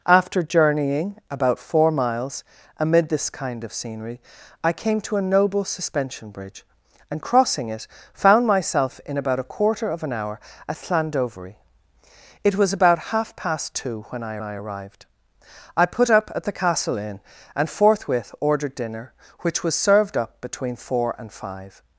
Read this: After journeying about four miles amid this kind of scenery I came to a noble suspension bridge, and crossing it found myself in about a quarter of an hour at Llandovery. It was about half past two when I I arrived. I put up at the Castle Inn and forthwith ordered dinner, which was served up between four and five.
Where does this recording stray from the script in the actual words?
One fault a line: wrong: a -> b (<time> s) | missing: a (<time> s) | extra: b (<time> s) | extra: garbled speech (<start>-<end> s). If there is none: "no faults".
no faults